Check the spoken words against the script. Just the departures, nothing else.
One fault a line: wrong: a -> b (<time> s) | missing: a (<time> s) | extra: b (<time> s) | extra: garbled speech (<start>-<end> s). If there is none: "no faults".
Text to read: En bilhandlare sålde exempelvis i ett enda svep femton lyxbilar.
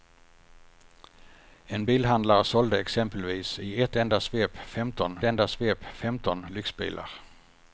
extra: enda svep femton (5.2 s)